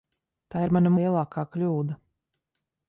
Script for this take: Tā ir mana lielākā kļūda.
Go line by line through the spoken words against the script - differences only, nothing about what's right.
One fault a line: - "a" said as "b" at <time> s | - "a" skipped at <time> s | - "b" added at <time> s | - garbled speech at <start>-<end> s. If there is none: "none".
none